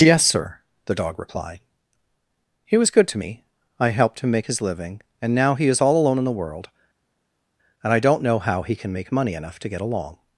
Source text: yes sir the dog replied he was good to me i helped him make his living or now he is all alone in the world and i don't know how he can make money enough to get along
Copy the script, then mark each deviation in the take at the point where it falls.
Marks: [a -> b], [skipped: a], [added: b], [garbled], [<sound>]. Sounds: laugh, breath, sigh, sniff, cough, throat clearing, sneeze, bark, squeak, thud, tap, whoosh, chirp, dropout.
yes sir the dog replied he was good to me i helped him make his living [or -> and] now he is all alone in the world and i don't know how he can make money enough to get along